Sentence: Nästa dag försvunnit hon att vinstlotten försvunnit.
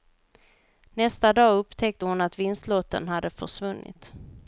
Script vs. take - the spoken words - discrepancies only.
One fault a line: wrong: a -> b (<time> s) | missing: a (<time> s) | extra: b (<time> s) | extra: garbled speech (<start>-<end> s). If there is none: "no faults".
wrong: försvunnit -> upptäckte (1.6 s)
extra: hade (3.1 s)